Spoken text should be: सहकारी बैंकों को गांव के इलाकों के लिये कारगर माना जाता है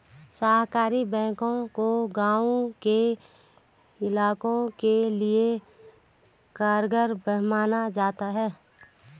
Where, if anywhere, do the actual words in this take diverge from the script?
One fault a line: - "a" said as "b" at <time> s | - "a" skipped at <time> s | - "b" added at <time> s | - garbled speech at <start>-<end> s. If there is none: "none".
none